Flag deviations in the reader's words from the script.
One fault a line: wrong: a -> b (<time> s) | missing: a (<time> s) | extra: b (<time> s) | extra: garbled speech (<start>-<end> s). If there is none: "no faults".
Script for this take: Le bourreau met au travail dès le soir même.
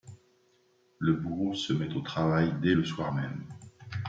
extra: se (1.5 s)